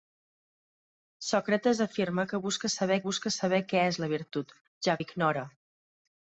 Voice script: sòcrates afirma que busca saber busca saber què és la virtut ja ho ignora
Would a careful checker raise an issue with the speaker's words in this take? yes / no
no